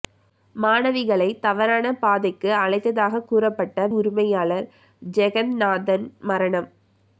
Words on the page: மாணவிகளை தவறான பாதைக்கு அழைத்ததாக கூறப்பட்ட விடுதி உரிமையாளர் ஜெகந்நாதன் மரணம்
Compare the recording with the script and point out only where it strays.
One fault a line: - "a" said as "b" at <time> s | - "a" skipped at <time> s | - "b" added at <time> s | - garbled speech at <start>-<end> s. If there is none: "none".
- "விடுதி" skipped at 3.9 s